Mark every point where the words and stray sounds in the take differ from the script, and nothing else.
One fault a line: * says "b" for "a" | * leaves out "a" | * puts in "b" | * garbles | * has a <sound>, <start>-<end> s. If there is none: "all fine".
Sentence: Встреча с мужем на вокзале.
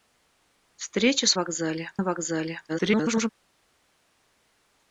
* says "вокзале" for "мужем"
* garbles